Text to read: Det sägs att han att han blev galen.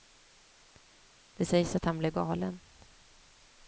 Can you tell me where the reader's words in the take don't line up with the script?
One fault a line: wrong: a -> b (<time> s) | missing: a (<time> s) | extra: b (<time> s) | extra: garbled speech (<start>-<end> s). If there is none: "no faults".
missing: att han (2.0 s)